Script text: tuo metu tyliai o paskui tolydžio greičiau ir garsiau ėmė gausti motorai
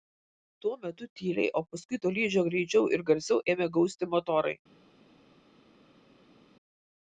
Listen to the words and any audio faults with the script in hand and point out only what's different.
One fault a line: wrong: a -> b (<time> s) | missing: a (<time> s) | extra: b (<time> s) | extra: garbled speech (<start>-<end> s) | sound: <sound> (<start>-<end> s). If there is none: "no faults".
no faults